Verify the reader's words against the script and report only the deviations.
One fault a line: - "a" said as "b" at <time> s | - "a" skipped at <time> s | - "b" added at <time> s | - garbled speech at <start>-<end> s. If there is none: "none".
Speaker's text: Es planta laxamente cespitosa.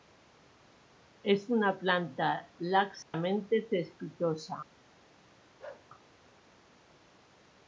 - "una" added at 1.5 s